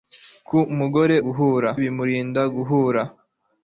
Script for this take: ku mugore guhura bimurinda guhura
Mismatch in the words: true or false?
false